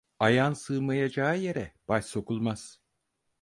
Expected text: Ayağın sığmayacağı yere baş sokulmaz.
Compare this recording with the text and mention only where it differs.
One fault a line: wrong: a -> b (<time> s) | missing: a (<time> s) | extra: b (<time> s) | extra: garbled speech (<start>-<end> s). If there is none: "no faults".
no faults